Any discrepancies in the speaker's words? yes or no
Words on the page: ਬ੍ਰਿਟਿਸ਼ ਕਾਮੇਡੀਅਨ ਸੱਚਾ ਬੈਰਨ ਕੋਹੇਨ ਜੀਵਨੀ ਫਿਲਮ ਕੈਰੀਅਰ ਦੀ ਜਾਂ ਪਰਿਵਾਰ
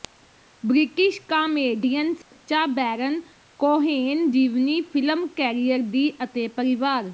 yes